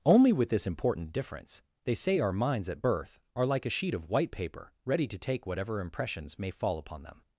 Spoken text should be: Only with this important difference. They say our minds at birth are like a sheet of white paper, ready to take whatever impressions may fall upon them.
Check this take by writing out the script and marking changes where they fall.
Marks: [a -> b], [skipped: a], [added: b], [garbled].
Only with this important difference. They say our minds at birth are like a sheet of white paper, ready to take whatever impressions may fall upon them.